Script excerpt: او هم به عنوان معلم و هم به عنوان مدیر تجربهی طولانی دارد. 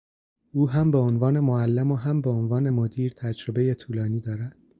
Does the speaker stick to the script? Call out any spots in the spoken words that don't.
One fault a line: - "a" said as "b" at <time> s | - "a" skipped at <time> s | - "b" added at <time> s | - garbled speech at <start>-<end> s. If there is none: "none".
none